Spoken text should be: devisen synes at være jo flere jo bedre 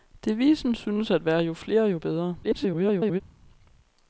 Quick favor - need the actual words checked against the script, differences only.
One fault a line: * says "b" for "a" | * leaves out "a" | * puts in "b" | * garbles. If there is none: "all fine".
* garbles